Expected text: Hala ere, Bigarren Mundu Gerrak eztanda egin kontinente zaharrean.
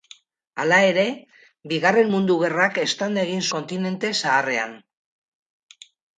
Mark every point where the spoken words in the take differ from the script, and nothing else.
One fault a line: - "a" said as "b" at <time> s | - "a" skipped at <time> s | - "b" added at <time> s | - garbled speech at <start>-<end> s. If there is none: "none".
none